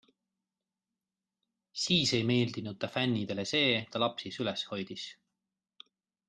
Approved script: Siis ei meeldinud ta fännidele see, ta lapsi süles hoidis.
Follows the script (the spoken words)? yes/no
yes